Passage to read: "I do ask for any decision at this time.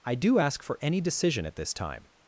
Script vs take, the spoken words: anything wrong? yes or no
no